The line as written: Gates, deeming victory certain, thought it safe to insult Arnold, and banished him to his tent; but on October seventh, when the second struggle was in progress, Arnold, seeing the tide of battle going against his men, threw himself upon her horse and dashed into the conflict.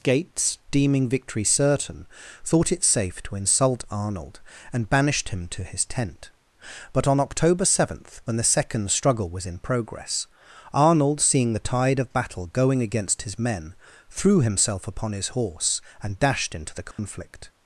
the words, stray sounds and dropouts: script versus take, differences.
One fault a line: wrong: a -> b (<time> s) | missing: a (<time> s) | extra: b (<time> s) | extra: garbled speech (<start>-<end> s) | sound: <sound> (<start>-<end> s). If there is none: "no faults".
wrong: her -> his (15.1 s)
sound: dropout (16.9-17.0 s)